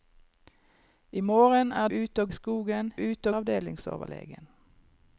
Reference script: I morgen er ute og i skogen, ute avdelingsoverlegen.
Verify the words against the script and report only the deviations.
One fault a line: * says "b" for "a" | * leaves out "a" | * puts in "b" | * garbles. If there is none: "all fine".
all fine